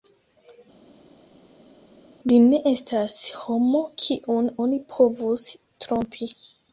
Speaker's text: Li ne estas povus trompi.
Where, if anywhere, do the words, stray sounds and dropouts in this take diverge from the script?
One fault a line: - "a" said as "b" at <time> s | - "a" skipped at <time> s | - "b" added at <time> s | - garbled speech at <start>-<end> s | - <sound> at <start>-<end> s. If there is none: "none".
- "homo kiun oni" added at 3.4 s